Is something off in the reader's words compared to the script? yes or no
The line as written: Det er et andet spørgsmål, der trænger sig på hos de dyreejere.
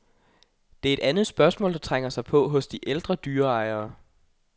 yes